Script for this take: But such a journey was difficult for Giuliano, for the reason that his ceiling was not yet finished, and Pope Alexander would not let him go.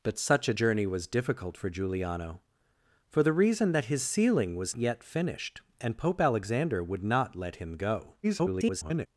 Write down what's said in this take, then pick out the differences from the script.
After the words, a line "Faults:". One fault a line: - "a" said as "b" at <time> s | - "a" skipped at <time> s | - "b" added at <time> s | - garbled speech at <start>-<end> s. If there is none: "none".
But such a journey was difficult for Giuliano, for the reason that his ceiling was yet finished, and Pope Alexander would not let him go. [garbled]
Faults:
- "not" skipped at 4.7 s
- garbled speech at 8.2-9.1 s